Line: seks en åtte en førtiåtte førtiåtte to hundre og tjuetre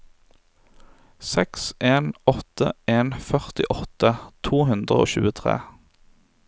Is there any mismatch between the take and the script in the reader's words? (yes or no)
yes